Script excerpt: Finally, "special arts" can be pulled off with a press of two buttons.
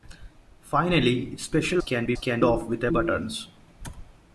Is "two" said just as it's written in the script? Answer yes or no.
no